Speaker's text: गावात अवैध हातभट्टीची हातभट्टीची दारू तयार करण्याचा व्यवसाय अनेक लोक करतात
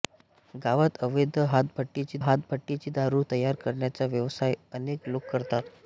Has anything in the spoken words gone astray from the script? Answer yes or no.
no